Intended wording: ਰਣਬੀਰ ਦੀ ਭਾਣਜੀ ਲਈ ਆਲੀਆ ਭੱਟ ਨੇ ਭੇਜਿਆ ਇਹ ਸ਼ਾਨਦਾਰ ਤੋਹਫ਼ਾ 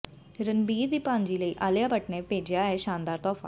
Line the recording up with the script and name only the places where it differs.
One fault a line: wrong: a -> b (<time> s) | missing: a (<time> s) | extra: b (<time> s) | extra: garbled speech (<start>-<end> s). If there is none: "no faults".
no faults